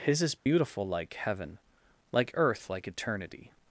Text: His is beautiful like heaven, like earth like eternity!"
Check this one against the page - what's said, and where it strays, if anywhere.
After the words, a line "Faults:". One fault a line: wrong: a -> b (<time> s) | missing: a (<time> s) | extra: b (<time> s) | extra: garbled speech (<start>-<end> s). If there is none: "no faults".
His is beautiful like heaven, like earth like eternity!"
Faults:
no faults